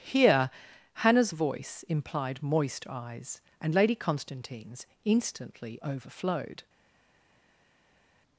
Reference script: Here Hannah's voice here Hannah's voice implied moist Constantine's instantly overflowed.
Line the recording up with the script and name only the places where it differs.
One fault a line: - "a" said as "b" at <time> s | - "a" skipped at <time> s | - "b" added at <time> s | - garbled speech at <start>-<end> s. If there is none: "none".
- "here Hannah's voice implied moist" said as "implied moist eyes and Lady" at 1.9 s